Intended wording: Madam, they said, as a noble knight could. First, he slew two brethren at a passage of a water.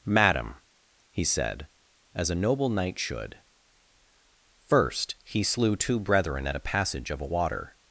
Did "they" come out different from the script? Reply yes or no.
yes